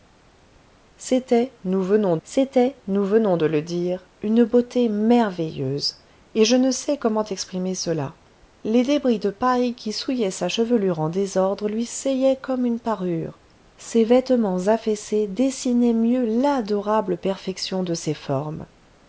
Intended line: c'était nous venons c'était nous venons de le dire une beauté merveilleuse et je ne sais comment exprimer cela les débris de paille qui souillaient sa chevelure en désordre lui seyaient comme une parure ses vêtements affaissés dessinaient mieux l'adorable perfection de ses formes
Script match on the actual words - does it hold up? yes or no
yes